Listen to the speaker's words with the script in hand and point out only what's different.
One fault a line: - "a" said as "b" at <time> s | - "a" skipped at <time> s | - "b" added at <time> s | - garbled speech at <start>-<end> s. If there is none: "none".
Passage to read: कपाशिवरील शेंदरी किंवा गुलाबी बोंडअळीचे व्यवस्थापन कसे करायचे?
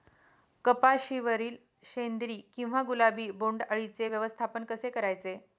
none